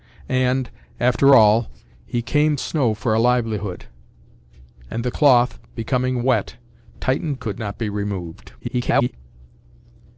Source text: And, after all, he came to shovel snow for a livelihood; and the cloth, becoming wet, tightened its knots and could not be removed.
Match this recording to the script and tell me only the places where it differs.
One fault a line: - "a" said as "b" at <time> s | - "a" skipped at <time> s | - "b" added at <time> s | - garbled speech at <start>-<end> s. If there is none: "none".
- "to shovel" skipped at 2.6 s
- "its knots and" skipped at 7.4 s
- garbled speech at 8.6-9.1 s